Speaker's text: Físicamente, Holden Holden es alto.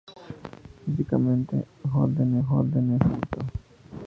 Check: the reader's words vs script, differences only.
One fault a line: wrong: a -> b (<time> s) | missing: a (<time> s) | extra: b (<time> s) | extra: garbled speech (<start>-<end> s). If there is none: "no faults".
no faults